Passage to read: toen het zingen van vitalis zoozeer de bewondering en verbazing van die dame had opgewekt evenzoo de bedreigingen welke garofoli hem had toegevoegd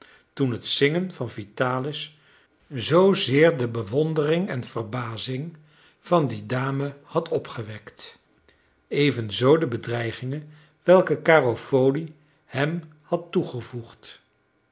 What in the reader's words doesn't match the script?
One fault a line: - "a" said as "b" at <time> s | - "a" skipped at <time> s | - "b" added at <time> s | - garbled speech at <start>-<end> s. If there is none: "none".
none